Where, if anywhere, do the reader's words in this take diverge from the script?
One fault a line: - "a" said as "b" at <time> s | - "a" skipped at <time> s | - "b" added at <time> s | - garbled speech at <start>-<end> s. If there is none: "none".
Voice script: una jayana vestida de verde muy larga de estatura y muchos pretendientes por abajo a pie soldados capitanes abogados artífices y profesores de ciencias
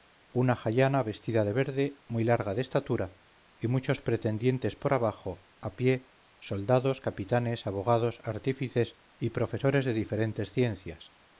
- "diferentes" added at 9.9 s